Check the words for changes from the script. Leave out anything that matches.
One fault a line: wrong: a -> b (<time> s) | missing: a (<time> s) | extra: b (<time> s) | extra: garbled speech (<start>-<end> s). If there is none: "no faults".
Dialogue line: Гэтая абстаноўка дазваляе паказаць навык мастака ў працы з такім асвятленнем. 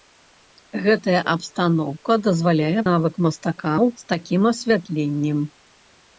missing: паказаць (2.8 s)
missing: працы (3.9 s)